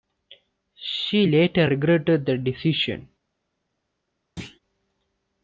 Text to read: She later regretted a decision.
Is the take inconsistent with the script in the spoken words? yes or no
yes